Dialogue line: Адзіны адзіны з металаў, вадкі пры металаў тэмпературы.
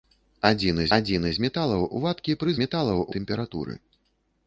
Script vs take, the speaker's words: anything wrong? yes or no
no